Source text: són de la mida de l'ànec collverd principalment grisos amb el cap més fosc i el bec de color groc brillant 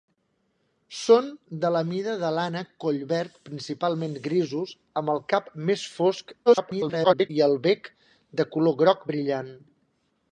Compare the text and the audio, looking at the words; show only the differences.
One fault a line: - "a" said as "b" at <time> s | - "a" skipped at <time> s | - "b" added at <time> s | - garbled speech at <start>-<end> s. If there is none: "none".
- garbled speech at 6.5-7.3 s